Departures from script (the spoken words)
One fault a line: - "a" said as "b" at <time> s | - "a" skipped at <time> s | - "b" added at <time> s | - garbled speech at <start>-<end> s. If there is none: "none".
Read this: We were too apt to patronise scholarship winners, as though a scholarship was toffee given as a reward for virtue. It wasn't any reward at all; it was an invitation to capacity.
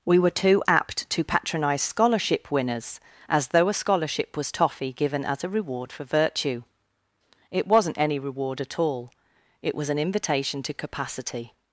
none